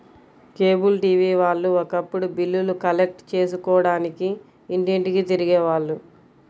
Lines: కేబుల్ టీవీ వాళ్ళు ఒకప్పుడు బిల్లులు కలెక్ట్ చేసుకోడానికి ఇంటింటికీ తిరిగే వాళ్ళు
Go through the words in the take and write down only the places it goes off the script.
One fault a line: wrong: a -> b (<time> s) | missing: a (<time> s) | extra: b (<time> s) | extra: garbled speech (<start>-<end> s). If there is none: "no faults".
no faults